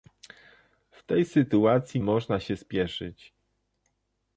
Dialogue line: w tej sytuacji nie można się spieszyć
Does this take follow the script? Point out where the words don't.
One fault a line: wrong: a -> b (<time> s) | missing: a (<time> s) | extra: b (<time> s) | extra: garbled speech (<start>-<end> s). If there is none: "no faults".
missing: nie (2.0 s)